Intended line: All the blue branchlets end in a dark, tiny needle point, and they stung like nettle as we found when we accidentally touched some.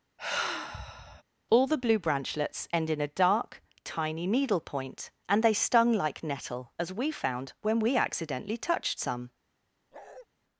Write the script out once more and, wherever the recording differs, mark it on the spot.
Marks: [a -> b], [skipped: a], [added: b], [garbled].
All the blue branchlets end in a dark, tiny needle point, and they stung like nettle as we found when we accidentally touched some.